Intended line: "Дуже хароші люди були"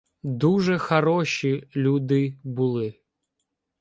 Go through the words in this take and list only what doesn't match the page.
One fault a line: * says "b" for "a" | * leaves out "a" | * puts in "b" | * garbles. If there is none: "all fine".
all fine